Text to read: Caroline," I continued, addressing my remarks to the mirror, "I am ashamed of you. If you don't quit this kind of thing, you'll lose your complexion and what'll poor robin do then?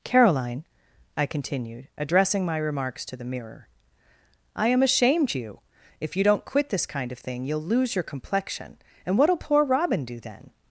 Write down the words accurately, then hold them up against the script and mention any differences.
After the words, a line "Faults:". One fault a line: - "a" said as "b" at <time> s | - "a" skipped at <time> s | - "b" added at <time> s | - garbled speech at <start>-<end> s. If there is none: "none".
Caroline," I continued, addressing my remarks to the mirror, "I am ashamed you. If you don't quit this kind of thing, you'll lose your complexion and what'll poor robin do then?
Faults:
- "of" skipped at 5.3 s